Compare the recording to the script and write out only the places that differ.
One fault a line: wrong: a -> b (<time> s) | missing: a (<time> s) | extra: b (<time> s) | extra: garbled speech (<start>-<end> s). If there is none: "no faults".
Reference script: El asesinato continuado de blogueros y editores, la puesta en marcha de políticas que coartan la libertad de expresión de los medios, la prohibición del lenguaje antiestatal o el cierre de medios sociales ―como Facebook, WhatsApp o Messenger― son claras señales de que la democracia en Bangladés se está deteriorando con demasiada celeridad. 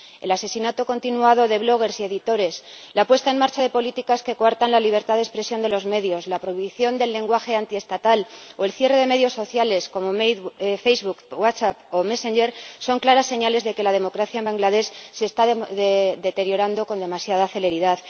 no faults